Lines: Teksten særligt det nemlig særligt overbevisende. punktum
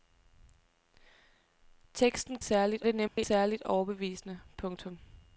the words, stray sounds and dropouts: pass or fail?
fail